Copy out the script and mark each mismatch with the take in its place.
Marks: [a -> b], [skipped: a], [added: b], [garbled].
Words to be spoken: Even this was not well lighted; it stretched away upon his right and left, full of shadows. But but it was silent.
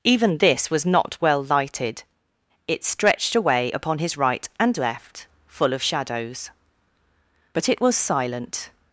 Even this was not well lighted; it stretched away upon his right and left, full of shadows. But [skipped: but] it was silent.